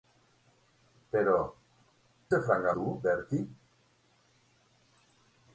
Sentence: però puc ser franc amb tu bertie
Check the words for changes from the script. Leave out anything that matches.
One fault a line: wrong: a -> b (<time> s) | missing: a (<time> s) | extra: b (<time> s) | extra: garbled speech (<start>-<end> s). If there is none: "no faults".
missing: puc (1.4 s)
missing: amb (2.7 s)